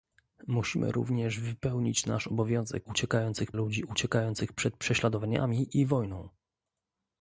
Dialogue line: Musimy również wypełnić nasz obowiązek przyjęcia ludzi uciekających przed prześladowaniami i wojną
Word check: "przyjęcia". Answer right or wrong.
wrong